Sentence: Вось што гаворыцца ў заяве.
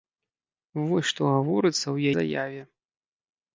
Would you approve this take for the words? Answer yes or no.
yes